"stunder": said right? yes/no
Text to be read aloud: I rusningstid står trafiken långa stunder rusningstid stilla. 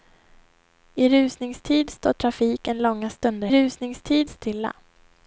yes